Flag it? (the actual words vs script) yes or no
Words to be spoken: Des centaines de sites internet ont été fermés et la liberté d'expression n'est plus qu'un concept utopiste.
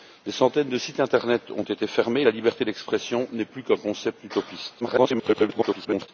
yes